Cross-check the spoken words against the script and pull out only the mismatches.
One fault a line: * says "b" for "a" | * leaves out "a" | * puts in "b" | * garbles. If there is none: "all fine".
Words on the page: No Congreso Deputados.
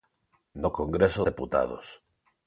all fine